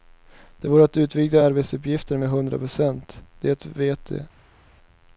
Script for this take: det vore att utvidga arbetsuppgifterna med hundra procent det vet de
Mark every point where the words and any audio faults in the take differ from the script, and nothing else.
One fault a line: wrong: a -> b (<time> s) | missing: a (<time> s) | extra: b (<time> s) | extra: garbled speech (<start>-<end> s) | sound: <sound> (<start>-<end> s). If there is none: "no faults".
no faults